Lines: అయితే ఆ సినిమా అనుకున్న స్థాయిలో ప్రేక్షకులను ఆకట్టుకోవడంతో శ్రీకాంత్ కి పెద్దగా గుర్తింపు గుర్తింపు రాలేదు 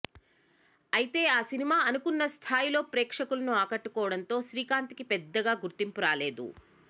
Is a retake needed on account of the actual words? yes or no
yes